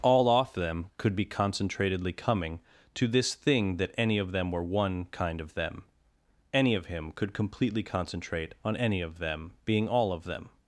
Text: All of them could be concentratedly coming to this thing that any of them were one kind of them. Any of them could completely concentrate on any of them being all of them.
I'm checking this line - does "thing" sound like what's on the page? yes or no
yes